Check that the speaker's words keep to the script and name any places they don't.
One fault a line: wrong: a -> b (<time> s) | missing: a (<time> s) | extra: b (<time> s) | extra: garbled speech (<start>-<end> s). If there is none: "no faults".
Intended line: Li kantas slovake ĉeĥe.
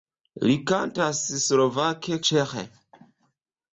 no faults